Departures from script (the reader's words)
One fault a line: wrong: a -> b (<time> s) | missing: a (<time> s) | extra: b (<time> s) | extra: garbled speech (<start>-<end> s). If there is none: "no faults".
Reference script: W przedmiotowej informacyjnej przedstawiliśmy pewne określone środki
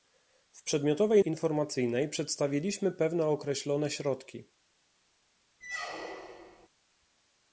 no faults